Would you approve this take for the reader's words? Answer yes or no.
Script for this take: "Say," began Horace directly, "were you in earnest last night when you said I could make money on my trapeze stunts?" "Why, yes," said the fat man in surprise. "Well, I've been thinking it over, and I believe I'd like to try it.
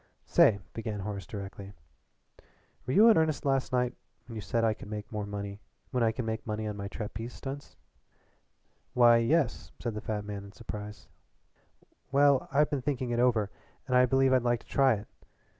yes